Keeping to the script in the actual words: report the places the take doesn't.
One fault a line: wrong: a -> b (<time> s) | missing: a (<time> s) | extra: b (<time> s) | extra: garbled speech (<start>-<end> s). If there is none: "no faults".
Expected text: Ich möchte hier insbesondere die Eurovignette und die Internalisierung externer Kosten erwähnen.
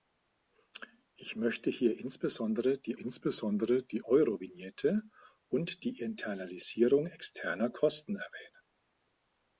extra: insbesondere die (3.0 s)